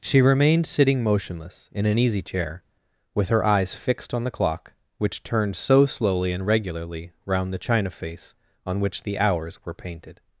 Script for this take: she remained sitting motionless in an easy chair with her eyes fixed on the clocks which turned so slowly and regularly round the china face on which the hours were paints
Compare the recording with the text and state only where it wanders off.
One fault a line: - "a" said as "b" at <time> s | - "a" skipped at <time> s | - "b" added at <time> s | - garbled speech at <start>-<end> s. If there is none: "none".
- "clocks" said as "clock" at 4.3 s
- "paints" said as "painted" at 9.7 s